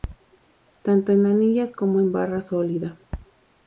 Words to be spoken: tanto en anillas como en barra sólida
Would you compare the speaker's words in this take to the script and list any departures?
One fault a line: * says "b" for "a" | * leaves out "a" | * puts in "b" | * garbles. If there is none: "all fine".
all fine